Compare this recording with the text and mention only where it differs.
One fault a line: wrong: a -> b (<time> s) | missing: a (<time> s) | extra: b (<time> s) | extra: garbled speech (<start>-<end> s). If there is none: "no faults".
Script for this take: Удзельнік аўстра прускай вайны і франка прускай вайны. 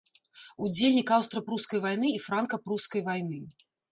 no faults